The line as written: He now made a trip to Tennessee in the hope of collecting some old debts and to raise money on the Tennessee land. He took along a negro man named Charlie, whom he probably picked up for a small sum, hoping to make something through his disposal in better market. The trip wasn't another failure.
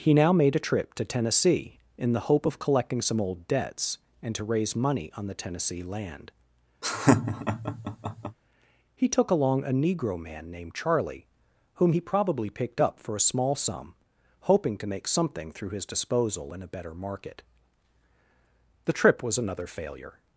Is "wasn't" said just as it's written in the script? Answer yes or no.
no